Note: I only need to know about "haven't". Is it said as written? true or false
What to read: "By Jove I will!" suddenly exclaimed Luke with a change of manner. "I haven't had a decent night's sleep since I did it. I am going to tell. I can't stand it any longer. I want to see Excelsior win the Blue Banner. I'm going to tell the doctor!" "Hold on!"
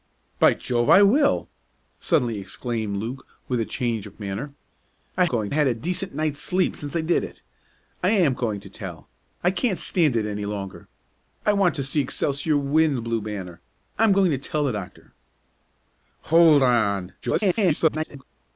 false